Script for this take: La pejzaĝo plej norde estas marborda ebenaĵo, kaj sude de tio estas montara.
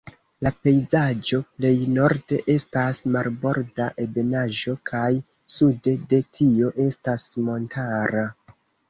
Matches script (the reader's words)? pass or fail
pass